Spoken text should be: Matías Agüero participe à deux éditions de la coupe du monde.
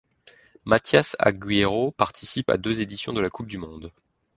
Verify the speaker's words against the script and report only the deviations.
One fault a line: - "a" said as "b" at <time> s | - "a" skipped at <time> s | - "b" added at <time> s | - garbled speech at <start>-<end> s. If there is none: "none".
none